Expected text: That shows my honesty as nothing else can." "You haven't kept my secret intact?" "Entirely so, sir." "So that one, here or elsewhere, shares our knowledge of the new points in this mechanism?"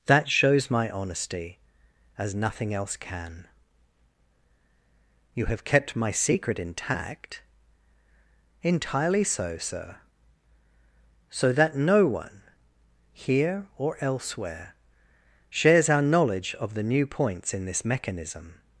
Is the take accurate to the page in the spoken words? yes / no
no